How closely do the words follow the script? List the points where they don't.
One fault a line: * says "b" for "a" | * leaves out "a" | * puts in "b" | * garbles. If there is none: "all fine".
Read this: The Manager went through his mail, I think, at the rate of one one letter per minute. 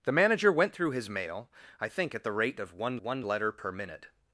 all fine